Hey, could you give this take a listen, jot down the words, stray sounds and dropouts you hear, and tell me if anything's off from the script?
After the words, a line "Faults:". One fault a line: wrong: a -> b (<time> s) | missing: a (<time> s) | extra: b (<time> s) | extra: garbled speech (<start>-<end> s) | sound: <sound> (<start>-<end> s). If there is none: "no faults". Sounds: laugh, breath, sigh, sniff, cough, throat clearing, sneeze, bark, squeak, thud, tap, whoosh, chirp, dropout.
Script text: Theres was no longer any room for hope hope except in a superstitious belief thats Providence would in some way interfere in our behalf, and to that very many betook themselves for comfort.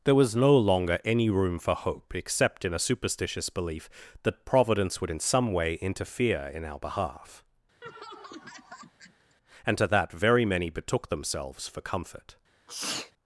There was no longer any room for hope except in a superstitious belief that Providence would in some way interfere in our behalf, and to that very many betook themselves for comfort.
Faults:
wrong: Theres -> There (0.0 s)
missing: hope (2.1 s)
wrong: thats -> that (4.2 s)
sound: laugh (7.8-9.4 s)
sound: sneeze (12.7-13.1 s)